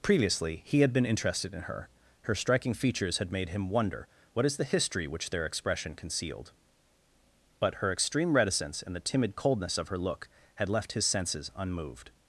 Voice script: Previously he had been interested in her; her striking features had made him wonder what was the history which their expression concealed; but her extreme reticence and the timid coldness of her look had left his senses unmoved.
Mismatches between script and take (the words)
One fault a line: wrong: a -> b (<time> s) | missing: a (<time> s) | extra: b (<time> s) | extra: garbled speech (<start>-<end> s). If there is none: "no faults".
wrong: was -> is (4.5 s)